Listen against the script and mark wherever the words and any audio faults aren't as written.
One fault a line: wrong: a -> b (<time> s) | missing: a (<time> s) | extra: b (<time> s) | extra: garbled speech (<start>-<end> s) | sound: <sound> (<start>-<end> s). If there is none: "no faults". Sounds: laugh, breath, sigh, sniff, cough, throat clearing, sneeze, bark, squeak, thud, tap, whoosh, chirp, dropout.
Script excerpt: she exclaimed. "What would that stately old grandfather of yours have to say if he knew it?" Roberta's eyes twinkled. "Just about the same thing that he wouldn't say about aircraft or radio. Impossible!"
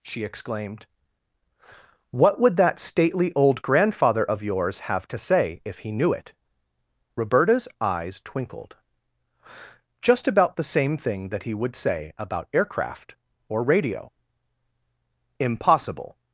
wrong: wouldn't -> would (11.5 s)